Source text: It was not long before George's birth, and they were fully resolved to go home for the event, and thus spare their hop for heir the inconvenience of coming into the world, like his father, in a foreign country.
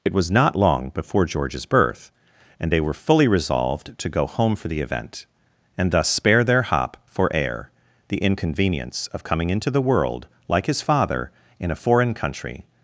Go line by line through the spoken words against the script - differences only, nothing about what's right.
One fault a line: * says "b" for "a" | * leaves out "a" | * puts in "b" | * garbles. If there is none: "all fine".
all fine